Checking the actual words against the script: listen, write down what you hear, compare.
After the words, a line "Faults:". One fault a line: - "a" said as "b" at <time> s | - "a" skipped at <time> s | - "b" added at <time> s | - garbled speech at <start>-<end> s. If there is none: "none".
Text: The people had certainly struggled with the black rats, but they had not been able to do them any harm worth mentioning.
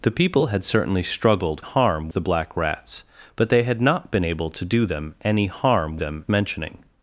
The people had certainly struggled harm the black rats, but they had not been able to do them any harm them mentioning.
Faults:
- "with" said as "harm" at 1.6 s
- "worth" said as "them" at 6.0 s